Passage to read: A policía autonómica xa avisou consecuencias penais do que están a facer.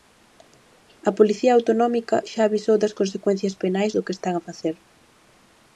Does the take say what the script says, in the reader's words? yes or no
no